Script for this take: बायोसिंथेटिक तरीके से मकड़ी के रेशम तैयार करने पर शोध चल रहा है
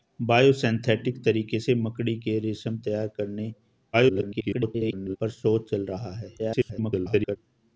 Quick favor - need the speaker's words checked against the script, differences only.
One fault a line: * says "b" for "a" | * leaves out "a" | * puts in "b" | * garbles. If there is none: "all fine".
* garbles
* garbles